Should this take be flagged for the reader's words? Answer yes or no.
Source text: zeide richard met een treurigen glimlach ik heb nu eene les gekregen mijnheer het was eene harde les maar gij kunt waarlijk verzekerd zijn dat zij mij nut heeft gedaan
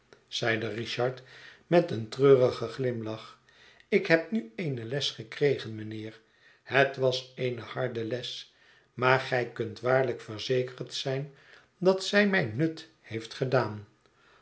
no